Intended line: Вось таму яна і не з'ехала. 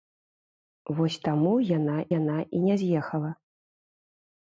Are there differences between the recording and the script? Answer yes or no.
yes